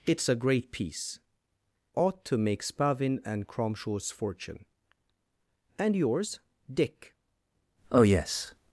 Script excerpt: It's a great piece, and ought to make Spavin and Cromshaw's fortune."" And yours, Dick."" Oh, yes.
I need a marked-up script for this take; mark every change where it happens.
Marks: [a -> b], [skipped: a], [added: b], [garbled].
It's a great piece, [skipped: and] ought to make Spavin and Cromshaw's fortune."" And yours, Dick."" Oh, yes.